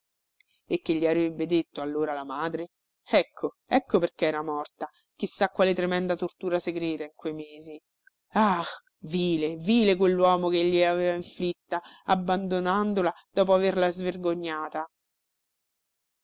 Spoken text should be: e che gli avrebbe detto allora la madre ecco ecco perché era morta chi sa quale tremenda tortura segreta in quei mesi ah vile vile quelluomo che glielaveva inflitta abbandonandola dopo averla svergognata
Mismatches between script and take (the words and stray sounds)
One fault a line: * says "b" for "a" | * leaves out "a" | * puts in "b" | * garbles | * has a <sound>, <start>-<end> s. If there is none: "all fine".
all fine